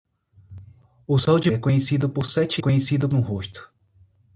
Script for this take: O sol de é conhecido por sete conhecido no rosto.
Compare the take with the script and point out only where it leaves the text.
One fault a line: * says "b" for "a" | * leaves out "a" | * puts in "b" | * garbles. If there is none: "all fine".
all fine